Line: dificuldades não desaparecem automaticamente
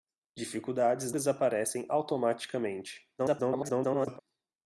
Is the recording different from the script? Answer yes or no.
yes